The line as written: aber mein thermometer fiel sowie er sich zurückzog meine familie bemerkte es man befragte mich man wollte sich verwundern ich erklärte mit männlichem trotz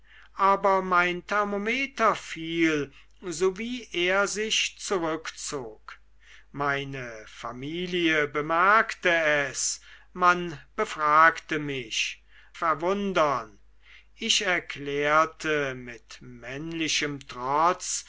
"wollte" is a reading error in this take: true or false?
true